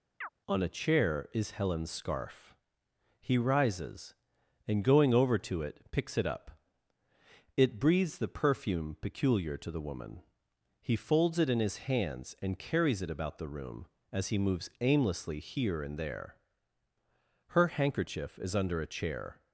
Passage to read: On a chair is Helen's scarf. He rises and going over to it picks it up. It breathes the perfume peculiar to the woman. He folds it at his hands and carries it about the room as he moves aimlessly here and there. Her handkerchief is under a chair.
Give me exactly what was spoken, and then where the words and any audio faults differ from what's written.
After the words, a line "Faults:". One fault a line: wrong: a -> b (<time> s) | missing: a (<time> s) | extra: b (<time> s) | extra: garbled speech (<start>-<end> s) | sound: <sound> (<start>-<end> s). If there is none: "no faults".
On a chair is Helen's scarf. He rises and going over to it picks it up. It breathes the perfume peculiar to the woman. He folds it in his hands and carries it about the room as he moves aimlessly here and there. Her handkerchief is under a chair.
Faults:
sound: chirp (0.2-0.3 s)
wrong: at -> in (11.5 s)